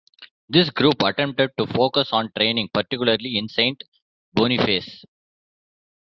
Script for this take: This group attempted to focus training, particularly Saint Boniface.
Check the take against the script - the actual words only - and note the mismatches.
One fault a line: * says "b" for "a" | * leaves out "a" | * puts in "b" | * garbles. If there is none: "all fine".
* puts in "on"
* puts in "in"